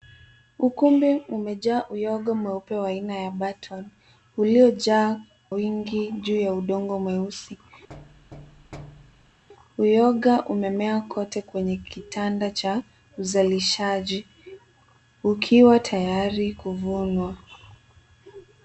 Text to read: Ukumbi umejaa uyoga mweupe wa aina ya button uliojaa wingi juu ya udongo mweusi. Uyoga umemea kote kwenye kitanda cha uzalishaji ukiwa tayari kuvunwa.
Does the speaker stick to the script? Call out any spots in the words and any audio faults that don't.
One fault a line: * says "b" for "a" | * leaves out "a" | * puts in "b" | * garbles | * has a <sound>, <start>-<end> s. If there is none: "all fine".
* has a thud, 7.9-9.4 s